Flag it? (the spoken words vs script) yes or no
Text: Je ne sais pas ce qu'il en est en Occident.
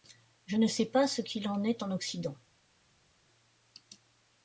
no